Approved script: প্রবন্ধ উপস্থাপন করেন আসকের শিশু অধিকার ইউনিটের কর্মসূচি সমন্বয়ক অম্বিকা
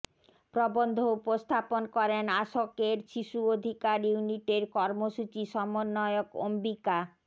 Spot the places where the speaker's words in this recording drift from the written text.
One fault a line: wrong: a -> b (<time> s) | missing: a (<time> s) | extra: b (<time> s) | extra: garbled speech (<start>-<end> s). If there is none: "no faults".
no faults